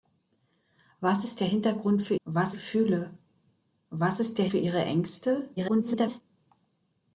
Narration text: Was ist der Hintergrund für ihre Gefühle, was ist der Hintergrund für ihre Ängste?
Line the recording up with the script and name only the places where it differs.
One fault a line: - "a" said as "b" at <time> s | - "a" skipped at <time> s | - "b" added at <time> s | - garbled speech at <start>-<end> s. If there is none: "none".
- "ihre" said as "was" at 2.2 s
- "Hintergrund" skipped at 4.5 s
- garbled speech at 5.6-6.2 s